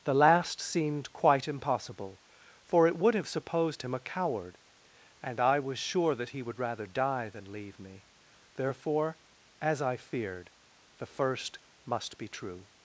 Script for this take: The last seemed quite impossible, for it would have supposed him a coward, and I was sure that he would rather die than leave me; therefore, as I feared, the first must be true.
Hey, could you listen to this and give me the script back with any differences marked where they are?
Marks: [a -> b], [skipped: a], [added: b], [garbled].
The last seemed quite impossible, for it would have supposed him a coward, and I was sure that he would rather die than leave me; therefore, as I feared, the first must be true.